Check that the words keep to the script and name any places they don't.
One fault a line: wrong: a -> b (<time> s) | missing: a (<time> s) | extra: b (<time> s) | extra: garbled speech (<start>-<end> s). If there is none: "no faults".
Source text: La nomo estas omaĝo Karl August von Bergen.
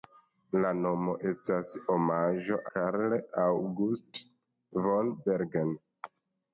no faults